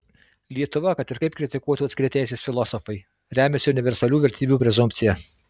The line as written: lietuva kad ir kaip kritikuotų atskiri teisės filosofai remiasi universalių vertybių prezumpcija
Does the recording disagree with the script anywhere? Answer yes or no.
no